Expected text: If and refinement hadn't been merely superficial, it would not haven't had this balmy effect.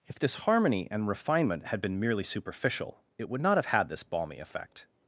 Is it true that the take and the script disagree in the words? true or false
true